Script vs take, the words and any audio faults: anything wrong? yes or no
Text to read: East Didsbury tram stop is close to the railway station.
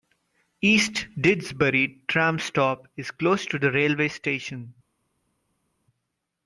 no